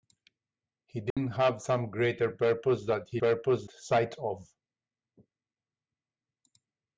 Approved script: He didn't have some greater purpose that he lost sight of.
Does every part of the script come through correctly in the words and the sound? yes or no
no